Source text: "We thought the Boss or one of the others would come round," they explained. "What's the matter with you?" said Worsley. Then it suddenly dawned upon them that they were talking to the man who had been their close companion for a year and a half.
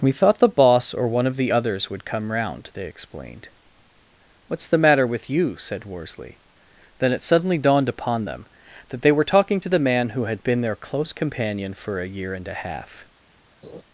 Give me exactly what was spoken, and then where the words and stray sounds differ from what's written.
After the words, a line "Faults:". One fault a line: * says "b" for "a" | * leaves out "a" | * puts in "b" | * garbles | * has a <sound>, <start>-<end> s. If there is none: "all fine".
"We thought the Boss or one of the others would come round," they explained. "What's the matter with you?" said Worsley. Then it suddenly dawned upon them that they were talking to the man who had been their close companion for a year and a half.
Faults:
* has a laugh, 13.6-13.8 s